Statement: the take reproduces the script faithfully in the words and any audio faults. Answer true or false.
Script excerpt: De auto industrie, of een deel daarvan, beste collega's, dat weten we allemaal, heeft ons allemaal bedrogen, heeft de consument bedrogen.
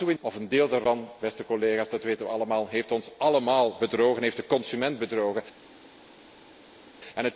false